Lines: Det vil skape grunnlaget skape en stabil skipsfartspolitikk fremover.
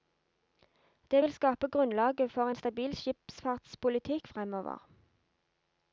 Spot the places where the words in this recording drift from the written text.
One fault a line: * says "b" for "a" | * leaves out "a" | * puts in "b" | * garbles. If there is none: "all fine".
* says "for" for "skape"